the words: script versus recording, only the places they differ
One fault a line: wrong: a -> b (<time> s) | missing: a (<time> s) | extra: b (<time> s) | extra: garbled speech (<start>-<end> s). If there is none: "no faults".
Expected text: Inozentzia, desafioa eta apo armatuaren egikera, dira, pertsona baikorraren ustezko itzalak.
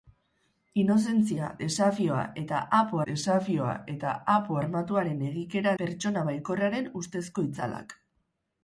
extra: desafioa eta apo (3.1 s)
missing: dira (5.7 s)